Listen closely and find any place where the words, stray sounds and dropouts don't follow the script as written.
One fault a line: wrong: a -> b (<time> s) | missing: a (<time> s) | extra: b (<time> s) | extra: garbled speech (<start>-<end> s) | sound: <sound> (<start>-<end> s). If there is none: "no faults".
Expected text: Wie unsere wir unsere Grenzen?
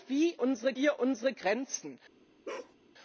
sound: bark (2.4-2.7 s)